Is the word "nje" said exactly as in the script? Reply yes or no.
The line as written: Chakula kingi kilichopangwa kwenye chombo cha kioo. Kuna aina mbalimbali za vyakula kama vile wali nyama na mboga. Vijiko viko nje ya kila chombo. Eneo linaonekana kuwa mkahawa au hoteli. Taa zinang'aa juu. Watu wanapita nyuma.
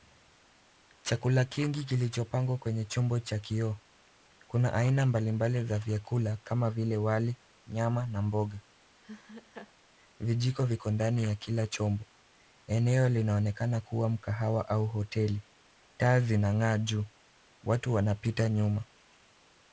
no